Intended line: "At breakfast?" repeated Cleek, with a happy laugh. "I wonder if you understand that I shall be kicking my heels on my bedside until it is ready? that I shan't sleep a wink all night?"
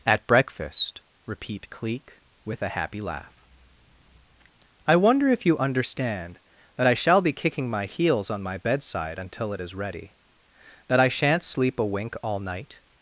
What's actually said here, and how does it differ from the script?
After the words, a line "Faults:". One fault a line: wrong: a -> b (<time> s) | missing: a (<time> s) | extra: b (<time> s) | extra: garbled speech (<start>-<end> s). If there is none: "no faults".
"At breakfast?" repeat Cleek, with a happy laugh. "I wonder if you understand that I shall be kicking my heels on my bedside until it is ready? that I shan't sleep a wink all night?"
Faults:
wrong: repeated -> repeat (1.3 s)